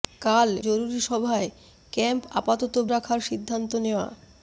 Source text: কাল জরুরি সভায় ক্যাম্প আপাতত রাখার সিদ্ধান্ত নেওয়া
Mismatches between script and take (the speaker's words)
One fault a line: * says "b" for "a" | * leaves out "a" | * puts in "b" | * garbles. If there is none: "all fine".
all fine